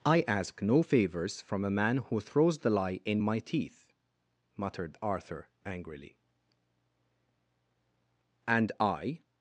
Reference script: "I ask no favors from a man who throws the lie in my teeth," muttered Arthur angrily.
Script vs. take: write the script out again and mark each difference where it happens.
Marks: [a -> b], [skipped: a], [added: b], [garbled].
"I ask no favors from a man who throws the lie in my teeth," muttered Arthur angrily. [added: And I]